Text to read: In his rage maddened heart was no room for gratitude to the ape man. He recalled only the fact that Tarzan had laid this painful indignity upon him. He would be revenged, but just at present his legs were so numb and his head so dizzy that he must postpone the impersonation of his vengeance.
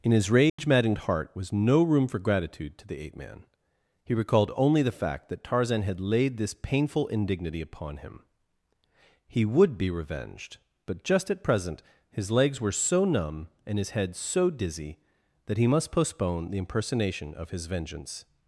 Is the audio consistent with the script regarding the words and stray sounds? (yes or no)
no